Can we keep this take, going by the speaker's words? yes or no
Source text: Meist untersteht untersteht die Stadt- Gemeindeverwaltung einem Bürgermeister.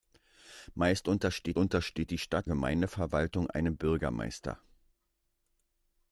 yes